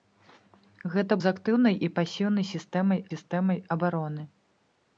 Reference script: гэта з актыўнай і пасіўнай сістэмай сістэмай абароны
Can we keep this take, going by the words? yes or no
yes